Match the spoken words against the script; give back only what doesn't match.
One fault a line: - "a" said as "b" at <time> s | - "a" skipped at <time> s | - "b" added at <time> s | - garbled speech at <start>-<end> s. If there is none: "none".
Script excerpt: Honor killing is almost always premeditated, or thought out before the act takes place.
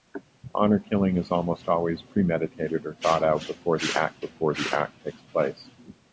- "before the act" added at 4.2 s